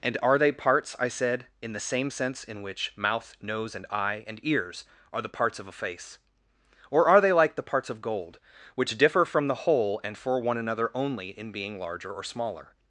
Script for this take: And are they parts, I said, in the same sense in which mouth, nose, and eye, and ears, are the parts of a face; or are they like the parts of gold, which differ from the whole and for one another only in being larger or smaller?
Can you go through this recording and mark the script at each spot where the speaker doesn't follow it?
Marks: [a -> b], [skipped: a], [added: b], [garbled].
And are they parts, I said, in the same sense in which mouth, nose, and eye, and ears, are the parts of a face; or are they like the parts of gold, which differ from the whole and for one another only in being larger or smaller?